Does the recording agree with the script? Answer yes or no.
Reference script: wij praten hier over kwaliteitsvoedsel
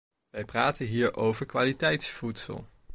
yes